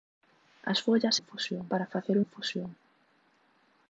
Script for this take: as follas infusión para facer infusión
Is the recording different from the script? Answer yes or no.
no